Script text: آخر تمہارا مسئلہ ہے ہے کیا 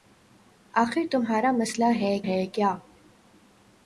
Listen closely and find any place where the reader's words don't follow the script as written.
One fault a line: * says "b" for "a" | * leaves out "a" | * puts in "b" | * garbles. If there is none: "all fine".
all fine